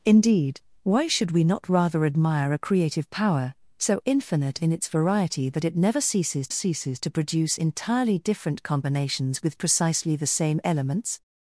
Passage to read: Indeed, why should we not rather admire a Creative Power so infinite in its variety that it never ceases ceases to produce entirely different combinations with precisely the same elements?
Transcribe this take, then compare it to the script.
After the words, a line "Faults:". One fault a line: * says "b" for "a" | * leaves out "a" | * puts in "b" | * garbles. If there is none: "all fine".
Indeed, why should we not rather admire a Creative Power so infinite in its variety that it never ceases ceases to produce entirely different combinations with precisely the same elements?
Faults:
all fine